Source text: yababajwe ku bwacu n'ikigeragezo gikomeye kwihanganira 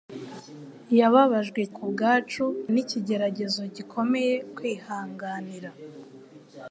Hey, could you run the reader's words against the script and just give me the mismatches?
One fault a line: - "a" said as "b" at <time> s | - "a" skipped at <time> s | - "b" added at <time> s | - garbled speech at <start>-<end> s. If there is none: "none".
none